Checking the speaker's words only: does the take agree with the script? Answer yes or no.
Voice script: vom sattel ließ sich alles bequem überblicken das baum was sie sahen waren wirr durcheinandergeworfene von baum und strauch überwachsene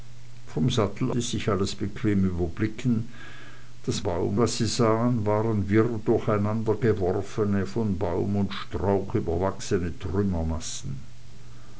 yes